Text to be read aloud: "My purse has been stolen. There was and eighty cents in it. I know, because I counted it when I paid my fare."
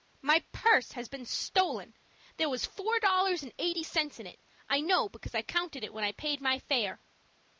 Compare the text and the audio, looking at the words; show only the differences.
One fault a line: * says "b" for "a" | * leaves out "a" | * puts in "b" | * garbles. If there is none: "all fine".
* puts in "four dollars"